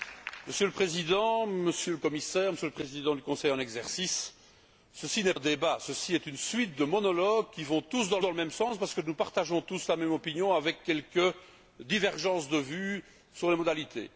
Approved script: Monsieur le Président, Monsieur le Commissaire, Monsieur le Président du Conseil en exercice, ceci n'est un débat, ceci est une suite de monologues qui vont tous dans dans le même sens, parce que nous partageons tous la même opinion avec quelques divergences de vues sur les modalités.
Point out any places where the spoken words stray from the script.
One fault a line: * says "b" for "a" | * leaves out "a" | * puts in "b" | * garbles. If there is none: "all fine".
all fine